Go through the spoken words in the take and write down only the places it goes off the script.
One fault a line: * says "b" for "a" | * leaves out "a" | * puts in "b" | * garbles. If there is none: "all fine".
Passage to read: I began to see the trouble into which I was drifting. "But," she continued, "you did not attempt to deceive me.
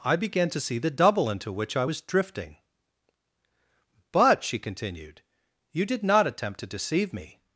* says "double" for "trouble"